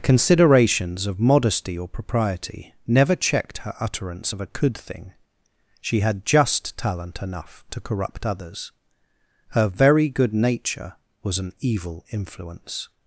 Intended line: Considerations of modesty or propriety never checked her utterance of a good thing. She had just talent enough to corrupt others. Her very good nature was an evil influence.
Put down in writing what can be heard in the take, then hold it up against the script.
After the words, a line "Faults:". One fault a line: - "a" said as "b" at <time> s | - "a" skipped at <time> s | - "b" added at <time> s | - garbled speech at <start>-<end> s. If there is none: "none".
Considerations of modesty or propriety never checked her utterance of a could thing. She had just talent enough to corrupt others. Her very good nature was an evil influence.
Faults:
- "good" said as "could" at 4.5 s